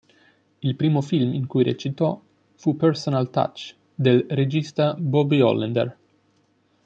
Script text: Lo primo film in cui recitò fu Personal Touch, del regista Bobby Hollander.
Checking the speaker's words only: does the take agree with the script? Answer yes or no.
no